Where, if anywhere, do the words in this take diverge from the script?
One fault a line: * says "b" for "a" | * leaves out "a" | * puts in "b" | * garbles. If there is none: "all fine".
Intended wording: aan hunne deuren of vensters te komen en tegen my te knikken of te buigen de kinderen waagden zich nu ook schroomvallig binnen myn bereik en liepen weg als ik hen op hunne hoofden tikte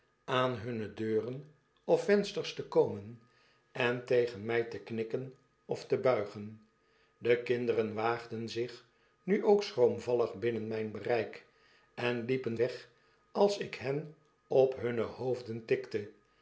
all fine